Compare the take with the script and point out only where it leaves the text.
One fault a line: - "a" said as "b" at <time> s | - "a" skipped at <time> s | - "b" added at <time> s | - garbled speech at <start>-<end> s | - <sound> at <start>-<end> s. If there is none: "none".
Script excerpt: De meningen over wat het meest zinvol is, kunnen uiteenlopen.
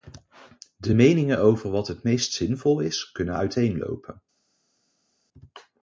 none